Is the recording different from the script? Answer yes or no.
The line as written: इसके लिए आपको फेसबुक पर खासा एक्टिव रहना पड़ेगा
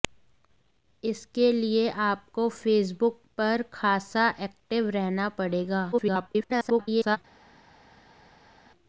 yes